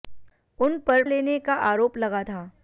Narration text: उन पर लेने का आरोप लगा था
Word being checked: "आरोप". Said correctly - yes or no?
yes